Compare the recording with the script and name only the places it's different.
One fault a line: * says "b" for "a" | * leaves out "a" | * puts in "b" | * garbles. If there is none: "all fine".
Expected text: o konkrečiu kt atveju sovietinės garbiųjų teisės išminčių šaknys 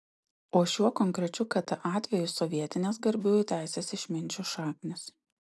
* puts in "šiuo"